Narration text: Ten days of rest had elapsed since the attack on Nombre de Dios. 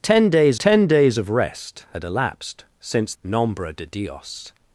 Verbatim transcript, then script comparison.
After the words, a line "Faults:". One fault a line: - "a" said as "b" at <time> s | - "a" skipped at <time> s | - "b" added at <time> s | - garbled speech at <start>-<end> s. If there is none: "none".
Ten days ten days of rest had elapsed since Nombre de Dios.
Faults:
- "ten days" added at 0.6 s
- "the attack on" skipped at 3.1 s